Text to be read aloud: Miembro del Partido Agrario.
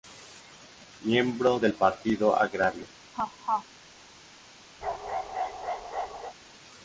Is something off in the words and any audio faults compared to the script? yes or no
yes